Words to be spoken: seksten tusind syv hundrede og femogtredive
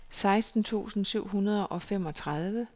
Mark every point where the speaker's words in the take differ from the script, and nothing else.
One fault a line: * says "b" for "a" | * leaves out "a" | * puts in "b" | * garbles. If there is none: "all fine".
all fine